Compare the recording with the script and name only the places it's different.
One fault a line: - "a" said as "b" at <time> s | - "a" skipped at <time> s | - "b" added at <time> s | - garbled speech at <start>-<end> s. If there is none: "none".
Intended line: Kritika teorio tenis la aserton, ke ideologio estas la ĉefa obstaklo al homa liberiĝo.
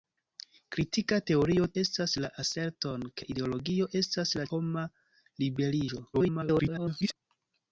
- "tenis" said as "estas" at 1.8 s
- "ĉefa obstaklo al" skipped at 4.5 s
- garbled speech at 6.1-7.2 s